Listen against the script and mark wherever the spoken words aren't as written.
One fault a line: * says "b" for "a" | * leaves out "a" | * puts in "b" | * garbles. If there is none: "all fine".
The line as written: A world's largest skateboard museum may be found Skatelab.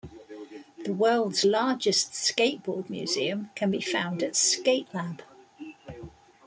* says "The" for "A"
* says "can" for "may"
* puts in "at"